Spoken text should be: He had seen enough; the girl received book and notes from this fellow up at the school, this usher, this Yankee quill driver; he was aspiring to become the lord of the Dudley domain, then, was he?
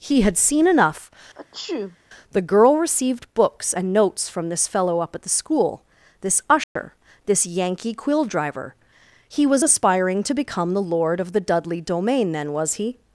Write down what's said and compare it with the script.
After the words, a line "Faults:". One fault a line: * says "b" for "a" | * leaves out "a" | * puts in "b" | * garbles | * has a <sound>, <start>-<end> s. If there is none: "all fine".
He had seen enough; the girl received books and notes from this fellow up at the school, this usher, this Yankee quill driver; he was aspiring to become the lord of the Dudley domain, then, was he?
Faults:
* has a sneeze, 1.3-2.0 s
* says "books" for "book"
* has a dropout, 6.6-6.8 s